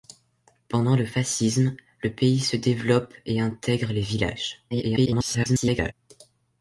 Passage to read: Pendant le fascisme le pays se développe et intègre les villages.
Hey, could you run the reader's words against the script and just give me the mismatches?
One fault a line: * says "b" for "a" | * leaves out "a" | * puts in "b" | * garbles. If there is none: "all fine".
* garbles